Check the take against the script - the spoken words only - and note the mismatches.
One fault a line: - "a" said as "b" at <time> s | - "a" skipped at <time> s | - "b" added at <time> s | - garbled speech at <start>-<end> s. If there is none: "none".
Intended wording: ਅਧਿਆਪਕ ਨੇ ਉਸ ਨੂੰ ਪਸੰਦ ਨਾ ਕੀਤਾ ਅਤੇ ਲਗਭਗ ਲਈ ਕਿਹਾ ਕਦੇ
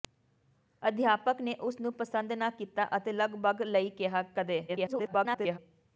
- garbled speech at 4.7-5.6 s